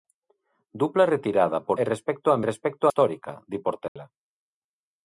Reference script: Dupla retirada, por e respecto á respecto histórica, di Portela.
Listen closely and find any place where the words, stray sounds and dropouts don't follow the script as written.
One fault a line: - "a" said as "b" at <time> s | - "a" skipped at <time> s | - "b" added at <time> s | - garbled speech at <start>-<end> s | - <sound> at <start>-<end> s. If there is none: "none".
- dropout at 3.9-4.0 s